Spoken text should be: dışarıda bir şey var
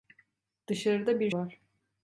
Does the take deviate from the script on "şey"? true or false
true